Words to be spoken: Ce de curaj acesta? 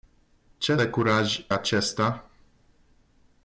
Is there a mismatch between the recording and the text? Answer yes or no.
no